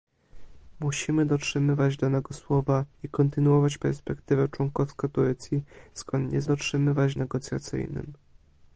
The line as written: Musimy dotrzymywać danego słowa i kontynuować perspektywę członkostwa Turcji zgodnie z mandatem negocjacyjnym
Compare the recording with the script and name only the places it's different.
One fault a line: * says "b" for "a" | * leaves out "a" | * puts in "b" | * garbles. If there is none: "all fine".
* says "dotrzymywać" for "mandatem"